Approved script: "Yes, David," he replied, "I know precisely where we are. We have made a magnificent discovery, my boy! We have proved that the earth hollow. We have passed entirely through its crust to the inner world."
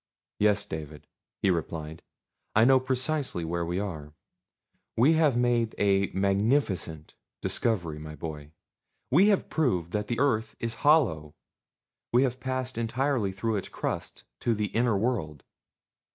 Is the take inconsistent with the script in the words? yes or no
yes